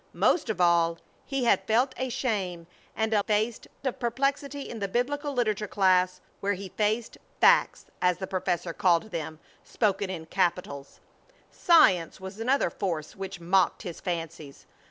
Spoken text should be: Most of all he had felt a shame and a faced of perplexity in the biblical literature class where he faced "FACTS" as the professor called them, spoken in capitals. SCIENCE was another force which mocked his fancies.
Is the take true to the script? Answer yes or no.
yes